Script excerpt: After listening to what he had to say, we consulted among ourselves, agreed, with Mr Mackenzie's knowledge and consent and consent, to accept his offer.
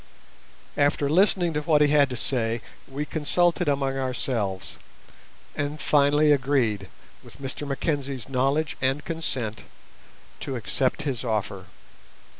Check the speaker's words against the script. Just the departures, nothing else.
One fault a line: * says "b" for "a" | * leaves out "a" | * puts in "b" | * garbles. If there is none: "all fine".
* puts in "and finally"
* leaves out "and consent"